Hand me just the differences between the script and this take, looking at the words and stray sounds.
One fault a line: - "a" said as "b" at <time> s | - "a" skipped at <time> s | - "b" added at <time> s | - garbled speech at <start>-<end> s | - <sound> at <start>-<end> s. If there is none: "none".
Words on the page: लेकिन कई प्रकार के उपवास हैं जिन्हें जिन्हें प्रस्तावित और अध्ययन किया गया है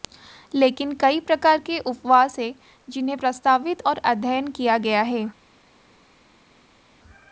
- "जिन्हें" skipped at 3.2 s